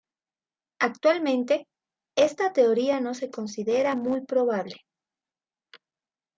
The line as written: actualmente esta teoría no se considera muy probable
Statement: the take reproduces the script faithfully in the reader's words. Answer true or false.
true